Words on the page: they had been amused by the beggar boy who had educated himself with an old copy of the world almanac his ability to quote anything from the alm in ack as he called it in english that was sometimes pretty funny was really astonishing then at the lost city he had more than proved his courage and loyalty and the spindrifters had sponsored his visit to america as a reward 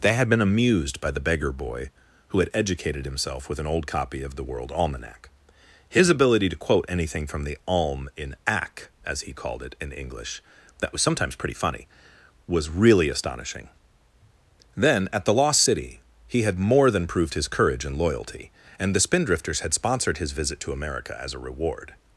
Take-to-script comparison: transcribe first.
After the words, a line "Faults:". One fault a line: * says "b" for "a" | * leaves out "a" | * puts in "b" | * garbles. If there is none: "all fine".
they had been amused by the beggar boy who had educated himself with an old copy of the world almanac his ability to quote anything from the alm in ack as he called it in english that was sometimes pretty funny was really astonishing then at the lost city he had more than proved his courage and loyalty and the spindrifters had sponsored his visit to america as a reward
Faults:
all fine